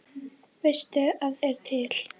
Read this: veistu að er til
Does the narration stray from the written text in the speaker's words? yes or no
no